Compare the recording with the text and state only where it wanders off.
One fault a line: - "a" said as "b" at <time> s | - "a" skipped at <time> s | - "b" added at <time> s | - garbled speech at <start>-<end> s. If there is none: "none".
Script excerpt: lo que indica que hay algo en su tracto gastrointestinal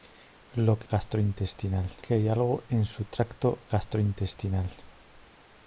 - "indica" said as "gastrointestinal" at 0.9 s